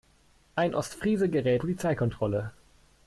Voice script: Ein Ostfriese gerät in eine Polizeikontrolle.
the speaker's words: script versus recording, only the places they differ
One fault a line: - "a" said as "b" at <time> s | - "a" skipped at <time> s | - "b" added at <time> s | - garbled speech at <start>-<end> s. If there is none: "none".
- "in eine" skipped at 1.6 s